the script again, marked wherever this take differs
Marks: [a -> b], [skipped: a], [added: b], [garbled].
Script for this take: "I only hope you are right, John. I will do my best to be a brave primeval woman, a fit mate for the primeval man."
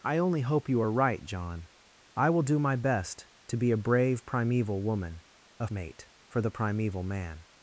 "I only hope you are right, John. I will do my best to be a brave primeval woman, a [skipped: fit] mate for the primeval man."